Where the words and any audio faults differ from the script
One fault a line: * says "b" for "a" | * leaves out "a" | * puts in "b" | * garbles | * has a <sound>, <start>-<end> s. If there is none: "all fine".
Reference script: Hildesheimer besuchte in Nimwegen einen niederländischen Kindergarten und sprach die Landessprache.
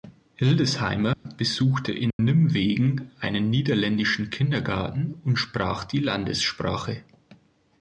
* has a dropout, 1.1-1.3 s
* has a dropout, 2.1-2.2 s